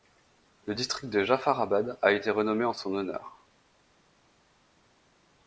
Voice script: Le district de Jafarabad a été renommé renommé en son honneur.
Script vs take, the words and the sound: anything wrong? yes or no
yes